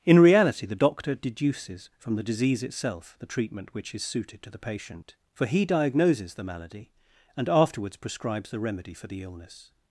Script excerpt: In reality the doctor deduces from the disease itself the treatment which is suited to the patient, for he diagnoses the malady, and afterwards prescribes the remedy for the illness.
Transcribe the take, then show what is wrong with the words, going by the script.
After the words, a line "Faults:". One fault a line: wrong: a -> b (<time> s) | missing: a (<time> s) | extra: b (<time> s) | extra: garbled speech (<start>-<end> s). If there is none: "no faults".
In reality the doctor deduces from the disease itself the treatment which is suited to the patient, for he diagnoses the malady, and afterwards prescribes the remedy for the illness.
Faults:
no faults